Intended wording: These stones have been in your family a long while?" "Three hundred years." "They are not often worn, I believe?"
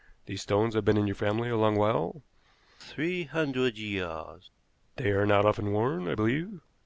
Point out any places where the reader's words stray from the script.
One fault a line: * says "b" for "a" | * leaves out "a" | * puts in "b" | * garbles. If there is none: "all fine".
all fine